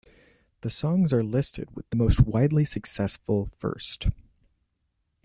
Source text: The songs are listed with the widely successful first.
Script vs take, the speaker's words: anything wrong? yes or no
yes